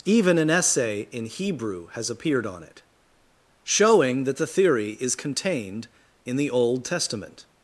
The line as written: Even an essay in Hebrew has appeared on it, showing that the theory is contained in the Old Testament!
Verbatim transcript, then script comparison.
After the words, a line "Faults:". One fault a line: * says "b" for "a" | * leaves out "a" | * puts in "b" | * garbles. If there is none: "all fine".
Even an essay in Hebrew has appeared on it, showing that the theory is contained in the Old Testament!
Faults:
all fine